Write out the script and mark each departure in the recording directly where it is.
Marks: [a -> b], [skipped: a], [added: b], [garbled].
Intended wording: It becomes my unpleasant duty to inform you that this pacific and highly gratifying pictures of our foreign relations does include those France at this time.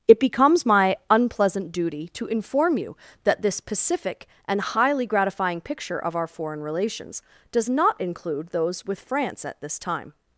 It becomes my unpleasant duty to inform you that this pacific and highly gratifying [pictures -> picture] of our foreign relations does [added: not] include those [added: with] France at this time.